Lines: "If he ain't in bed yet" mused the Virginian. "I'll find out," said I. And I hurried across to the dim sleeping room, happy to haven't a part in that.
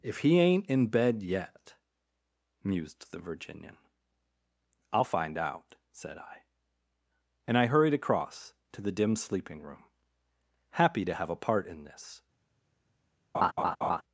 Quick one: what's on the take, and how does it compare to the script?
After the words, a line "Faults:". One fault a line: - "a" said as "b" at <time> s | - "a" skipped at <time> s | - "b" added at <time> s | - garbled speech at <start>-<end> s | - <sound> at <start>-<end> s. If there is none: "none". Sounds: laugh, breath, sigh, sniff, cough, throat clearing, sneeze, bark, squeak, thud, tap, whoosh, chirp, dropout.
"If he ain't in bed yet" mused the Virginian. "I'll find out," said I. And I hurried across to the dim sleeping room, happy to have a part in this.
Faults:
- "haven't" said as "have" at 11.1 s
- "that" said as "this" at 11.8 s
- laugh at 13.3-14.0 s